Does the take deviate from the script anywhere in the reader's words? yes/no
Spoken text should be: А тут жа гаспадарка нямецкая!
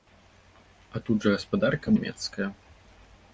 no